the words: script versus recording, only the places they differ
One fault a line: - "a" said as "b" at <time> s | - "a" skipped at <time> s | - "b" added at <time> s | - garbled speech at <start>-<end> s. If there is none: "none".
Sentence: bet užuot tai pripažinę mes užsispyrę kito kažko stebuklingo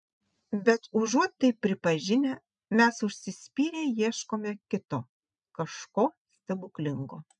- "ieškome" added at 4.0 s